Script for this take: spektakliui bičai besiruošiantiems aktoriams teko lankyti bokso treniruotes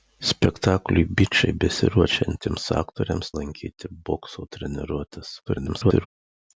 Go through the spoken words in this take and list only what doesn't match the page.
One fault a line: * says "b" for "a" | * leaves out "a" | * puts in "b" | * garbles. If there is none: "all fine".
* leaves out "teko"
* garbles